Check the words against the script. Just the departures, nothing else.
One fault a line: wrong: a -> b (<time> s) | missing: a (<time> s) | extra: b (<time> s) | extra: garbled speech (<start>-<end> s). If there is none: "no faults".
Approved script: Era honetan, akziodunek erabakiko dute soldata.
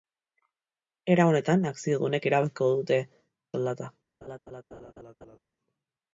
no faults